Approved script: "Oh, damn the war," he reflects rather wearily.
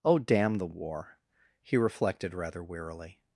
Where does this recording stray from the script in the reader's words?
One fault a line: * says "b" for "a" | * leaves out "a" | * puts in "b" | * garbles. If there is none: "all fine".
* says "reflected" for "reflects"